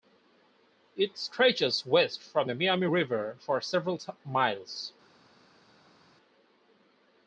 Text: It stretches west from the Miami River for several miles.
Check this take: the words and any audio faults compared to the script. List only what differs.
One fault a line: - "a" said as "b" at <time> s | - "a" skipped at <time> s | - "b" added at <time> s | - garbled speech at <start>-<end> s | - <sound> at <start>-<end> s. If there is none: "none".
none